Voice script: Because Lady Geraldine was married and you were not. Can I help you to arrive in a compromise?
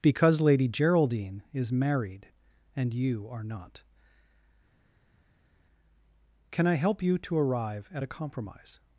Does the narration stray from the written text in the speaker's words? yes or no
yes